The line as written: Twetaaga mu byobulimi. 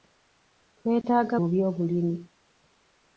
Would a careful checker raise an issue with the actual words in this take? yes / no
no